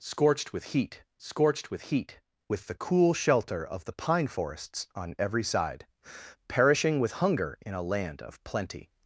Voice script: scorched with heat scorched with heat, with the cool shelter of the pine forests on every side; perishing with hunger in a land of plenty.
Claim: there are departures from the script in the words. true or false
false